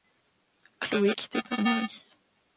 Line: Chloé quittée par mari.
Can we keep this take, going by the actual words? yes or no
yes